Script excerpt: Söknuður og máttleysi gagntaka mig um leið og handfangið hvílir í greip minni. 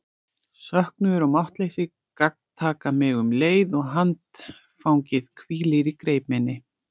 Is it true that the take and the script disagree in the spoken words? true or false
false